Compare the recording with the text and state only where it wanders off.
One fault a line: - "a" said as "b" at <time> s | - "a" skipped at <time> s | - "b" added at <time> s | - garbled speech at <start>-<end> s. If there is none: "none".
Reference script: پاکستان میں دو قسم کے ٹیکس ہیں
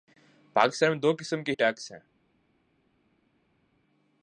none